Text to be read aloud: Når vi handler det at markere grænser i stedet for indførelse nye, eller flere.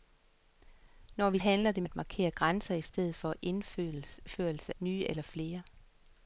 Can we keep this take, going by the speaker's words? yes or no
yes